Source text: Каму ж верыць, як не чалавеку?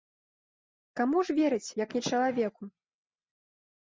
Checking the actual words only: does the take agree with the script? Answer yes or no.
yes